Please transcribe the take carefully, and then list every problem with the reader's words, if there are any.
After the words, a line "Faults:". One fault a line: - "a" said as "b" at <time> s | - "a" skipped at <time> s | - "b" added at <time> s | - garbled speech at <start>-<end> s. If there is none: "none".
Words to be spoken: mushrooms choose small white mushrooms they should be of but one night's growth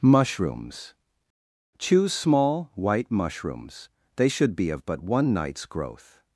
mushrooms choose small white mushrooms they should be of but one night's growth
Faults:
none